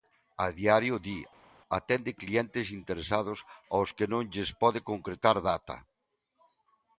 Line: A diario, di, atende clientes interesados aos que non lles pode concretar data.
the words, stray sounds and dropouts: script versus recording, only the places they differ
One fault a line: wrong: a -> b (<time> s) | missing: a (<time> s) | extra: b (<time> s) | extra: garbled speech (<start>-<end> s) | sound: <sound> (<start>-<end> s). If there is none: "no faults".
no faults